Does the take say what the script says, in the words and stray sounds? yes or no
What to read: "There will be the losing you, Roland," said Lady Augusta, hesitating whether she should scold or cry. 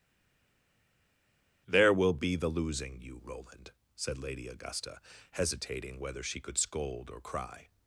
no